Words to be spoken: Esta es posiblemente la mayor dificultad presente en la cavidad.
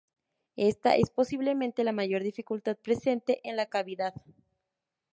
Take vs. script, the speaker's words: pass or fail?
pass